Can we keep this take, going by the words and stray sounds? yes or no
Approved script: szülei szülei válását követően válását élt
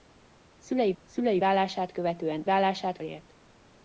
yes